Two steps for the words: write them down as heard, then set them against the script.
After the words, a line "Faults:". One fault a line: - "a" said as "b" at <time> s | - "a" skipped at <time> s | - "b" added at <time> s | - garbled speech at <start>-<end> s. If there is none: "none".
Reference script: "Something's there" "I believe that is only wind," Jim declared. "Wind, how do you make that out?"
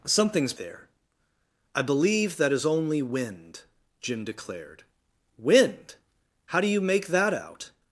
"Something's there" "I believe that is only wind," Jim declared. "Wind, how do you make that out?"
Faults:
none